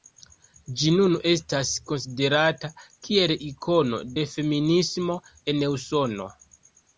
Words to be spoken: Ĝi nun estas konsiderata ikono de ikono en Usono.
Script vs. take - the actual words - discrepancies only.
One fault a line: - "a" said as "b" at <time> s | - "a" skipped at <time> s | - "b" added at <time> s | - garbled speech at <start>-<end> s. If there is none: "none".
- "kiel" added at 3.1 s
- "ikono" said as "feminismo" at 4.4 s